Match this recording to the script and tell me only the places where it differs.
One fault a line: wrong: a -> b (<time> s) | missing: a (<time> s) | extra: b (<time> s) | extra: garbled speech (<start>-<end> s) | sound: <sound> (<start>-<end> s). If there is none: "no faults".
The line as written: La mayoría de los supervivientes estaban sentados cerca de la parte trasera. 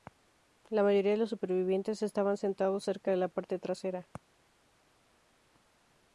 no faults